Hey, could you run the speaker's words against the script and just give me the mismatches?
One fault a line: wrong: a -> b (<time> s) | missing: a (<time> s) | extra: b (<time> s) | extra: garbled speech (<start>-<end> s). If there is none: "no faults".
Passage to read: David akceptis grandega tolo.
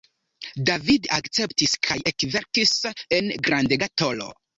extra: kaj ekverkis en (1.9 s)